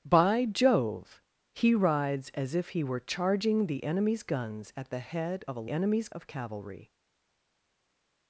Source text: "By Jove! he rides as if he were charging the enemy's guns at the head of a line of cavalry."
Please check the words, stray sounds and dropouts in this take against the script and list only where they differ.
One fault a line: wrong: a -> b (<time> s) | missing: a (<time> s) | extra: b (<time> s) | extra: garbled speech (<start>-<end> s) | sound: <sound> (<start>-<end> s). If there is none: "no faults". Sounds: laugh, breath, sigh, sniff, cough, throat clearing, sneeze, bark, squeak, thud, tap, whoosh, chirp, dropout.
wrong: line -> enemy's (5.7 s)